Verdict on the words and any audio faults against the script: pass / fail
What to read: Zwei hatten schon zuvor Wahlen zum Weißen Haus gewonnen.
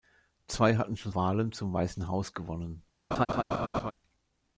fail